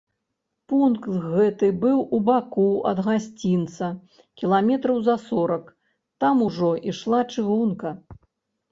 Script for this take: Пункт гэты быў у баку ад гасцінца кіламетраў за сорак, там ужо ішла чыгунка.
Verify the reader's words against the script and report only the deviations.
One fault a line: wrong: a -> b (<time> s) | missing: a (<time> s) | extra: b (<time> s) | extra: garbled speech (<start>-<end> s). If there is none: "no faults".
no faults